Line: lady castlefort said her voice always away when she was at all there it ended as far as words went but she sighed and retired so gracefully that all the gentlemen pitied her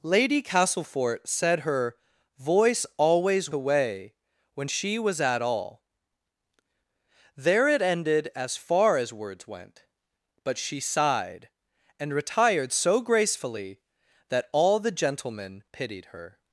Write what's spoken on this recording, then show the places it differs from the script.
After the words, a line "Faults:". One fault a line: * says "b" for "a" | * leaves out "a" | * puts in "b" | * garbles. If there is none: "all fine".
lady castlefort said her voice always away when she was at all there it ended as far as words went but she sighed and retired so gracefully that all the gentlemen pitied her
Faults:
all fine